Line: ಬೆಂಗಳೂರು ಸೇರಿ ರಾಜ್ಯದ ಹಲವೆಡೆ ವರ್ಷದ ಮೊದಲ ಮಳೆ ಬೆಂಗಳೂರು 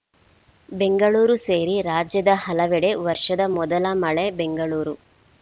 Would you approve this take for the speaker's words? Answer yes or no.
yes